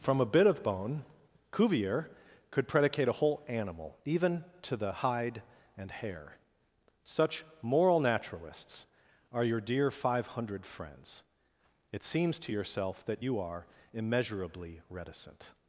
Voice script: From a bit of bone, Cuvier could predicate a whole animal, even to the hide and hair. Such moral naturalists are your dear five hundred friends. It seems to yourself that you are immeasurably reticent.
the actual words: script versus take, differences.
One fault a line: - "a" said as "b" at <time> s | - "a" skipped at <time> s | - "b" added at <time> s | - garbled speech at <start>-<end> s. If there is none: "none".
none